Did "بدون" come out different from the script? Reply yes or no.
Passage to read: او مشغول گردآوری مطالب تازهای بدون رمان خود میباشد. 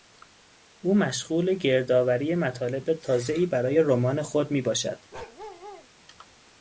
yes